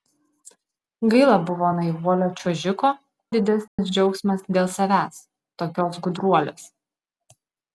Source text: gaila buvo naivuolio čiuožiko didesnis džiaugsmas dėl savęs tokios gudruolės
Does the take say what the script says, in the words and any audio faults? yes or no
no